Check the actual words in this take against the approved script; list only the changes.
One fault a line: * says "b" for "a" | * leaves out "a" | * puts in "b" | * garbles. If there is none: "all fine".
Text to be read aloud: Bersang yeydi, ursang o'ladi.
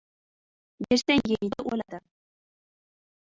* leaves out "ursang"